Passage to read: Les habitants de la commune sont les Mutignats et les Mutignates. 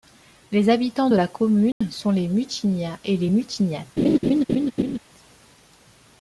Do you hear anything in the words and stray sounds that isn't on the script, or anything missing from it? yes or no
yes